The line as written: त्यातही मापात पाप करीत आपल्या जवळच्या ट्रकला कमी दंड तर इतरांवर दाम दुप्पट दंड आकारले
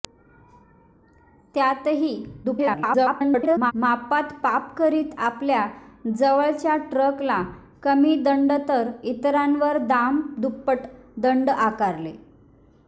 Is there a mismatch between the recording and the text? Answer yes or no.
yes